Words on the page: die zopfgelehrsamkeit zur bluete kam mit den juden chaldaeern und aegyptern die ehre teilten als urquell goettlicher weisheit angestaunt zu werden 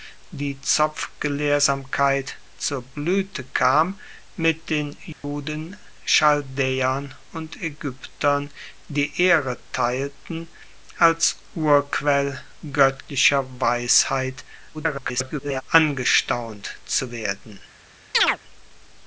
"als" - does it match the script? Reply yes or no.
yes